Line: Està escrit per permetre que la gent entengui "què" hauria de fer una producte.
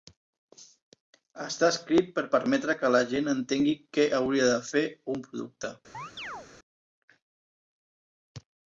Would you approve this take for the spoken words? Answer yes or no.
no